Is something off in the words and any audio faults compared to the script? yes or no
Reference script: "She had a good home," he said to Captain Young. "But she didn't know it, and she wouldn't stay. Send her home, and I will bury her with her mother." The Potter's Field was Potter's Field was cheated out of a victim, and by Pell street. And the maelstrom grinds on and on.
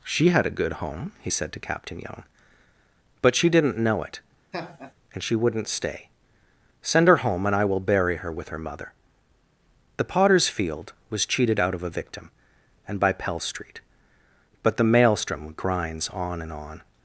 yes